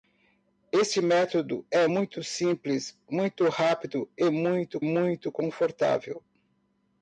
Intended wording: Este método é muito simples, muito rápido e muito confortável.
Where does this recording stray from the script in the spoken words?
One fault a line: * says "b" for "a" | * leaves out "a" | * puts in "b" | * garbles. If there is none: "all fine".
* puts in "muito"